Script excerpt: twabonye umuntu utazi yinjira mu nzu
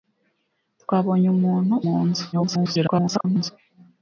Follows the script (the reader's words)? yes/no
no